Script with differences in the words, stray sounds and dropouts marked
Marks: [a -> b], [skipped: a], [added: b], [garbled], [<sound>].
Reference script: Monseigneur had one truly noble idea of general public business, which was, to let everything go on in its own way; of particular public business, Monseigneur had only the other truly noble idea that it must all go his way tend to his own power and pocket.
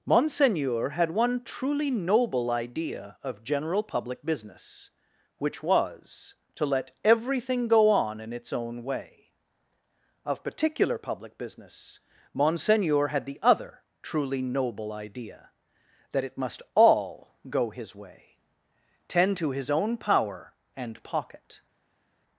Monseigneur had one truly noble idea of general public business, which was, to let everything go on in its own way; of particular public business, Monseigneur had [skipped: only] the other truly noble idea that it must all go his way tend to his own power and pocket.